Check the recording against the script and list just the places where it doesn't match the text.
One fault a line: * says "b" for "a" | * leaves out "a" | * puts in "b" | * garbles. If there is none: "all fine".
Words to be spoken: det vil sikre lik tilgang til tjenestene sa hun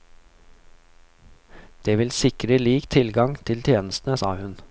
all fine